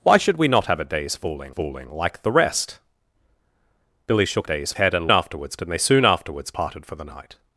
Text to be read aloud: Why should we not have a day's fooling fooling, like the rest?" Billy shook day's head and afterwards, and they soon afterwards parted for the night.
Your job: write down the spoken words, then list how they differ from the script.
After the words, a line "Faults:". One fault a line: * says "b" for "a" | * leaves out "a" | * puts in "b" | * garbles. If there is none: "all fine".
Why should we not have a day's fooling fooling, like the rest?" Billy shook day's head and afterwards, and they soon afterwards parted for the night.
Faults:
all fine